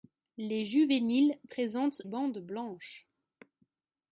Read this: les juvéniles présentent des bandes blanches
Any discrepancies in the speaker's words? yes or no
yes